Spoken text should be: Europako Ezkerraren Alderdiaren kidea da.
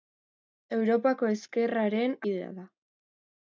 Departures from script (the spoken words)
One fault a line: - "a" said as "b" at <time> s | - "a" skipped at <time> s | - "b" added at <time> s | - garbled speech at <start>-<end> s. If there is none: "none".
- "Alderdiaren" skipped at 2.2 s